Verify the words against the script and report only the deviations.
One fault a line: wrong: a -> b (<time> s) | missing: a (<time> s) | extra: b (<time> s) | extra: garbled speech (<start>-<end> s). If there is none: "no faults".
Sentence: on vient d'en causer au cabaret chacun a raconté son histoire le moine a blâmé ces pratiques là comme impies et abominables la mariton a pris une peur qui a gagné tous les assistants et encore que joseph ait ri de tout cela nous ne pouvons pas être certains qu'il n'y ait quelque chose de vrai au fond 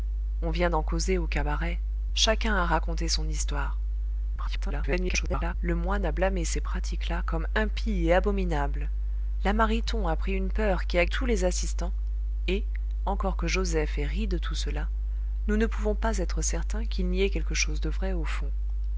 extra: garbled speech (4.4-5.5 s)
missing: gagné (11.1 s)